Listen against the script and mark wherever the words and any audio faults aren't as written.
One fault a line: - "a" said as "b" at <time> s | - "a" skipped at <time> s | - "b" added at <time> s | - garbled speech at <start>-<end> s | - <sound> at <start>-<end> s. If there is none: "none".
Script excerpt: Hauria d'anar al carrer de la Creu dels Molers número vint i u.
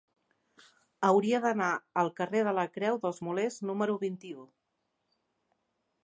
none